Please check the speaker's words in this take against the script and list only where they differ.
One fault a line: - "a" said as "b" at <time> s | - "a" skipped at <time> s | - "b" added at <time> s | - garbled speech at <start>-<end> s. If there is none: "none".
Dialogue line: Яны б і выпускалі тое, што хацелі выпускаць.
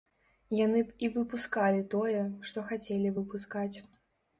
none